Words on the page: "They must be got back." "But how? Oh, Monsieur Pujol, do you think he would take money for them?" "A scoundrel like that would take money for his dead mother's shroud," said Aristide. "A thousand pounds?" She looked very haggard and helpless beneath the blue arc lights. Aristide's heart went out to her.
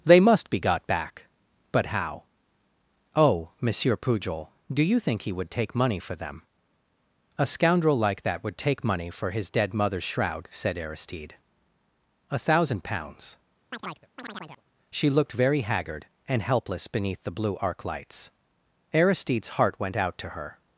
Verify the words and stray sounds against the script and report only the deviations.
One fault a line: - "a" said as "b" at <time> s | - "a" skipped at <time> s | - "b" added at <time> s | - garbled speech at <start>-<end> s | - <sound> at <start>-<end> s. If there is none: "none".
- chirp at 13.7-14.6 s